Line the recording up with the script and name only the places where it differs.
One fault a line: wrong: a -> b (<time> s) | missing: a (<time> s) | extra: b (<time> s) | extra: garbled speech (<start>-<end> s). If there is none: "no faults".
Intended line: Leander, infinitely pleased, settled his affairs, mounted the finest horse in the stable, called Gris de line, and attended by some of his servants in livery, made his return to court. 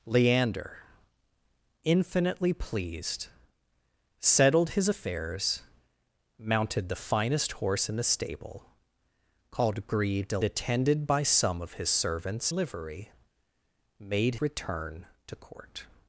missing: line and (10.4 s)
missing: in (12.5 s)
missing: his (14.4 s)